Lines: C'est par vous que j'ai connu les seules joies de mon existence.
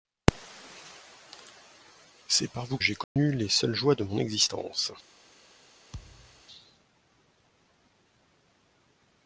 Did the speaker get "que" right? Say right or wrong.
wrong